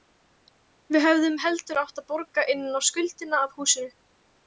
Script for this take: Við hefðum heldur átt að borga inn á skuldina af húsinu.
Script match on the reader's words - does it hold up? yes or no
yes